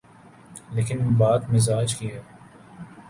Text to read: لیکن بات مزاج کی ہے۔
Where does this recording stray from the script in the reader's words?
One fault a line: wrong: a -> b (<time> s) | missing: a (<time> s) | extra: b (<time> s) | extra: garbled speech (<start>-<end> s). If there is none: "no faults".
no faults